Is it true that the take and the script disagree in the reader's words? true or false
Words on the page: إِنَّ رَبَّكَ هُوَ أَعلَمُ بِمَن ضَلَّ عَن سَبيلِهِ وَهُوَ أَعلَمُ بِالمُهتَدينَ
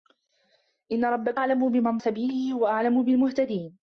true